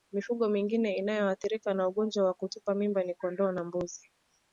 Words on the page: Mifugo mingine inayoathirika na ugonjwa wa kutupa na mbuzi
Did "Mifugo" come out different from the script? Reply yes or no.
no